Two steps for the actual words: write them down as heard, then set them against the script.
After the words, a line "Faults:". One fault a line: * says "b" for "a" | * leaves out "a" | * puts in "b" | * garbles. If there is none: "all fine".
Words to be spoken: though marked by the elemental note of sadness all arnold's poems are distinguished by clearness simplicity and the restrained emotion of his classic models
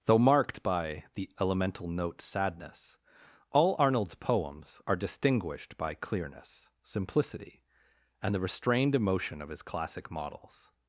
though marked by the elemental note sadness all arnold's poems are distinguished by clearness simplicity and the restrained emotion of his classic models
Faults:
* leaves out "of"